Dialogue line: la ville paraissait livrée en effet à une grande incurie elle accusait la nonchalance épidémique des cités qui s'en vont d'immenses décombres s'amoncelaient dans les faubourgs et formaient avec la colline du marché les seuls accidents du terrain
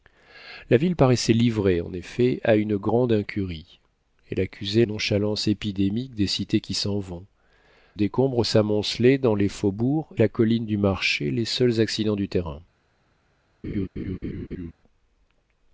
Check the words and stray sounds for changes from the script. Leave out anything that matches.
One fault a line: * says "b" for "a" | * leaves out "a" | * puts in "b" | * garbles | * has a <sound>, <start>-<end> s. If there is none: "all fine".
* leaves out "la"
* leaves out "d'immenses"
* leaves out "et formaient avec"
* has a laugh, 13.6-14.7 s